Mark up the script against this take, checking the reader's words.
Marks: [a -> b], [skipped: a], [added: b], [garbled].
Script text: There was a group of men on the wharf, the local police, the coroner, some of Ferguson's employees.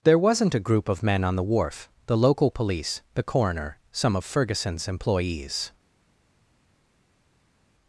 There [was -> wasn't] a group of men on the wharf, the local police, the coroner, some of Ferguson's employees.